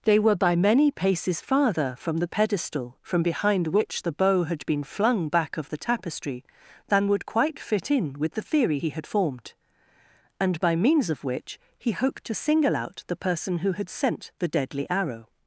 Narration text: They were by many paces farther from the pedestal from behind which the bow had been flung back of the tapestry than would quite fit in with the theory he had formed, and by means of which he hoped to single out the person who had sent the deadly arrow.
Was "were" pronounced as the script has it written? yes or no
yes